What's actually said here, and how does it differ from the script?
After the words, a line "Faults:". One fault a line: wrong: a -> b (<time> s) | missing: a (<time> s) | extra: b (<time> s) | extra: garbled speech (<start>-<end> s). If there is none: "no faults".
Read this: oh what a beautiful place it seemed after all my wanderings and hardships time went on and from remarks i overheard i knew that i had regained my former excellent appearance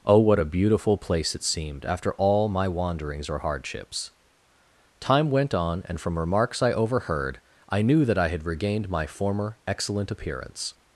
oh what a beautiful place it seemed after all my wanderings or hardships time went on and from remarks i overheard i knew that i had regained my former excellent appearance
Faults:
wrong: and -> or (3.3 s)